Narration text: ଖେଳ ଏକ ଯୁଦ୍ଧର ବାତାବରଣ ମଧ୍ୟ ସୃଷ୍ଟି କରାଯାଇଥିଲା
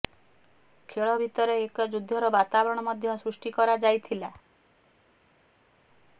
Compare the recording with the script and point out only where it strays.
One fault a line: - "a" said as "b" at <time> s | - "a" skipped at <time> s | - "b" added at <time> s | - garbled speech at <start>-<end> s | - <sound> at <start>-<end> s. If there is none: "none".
- "ଭିତରେ" added at 1.2 s